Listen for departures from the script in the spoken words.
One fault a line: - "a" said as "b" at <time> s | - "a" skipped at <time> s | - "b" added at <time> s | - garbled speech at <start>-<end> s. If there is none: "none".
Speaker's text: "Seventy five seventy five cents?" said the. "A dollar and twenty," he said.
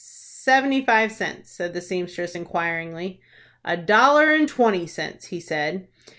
- "seventy five" skipped at 1.1 s
- "seamstress inquiringly" added at 1.8 s
- "cents" added at 4.8 s